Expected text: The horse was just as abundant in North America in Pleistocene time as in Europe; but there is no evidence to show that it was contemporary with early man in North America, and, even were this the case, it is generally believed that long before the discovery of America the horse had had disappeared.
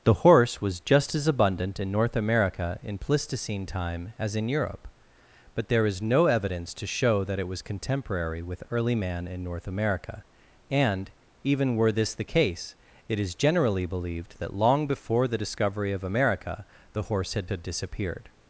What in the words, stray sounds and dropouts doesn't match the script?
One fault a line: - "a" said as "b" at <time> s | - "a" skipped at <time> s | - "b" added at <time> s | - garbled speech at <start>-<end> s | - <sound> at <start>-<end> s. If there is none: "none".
none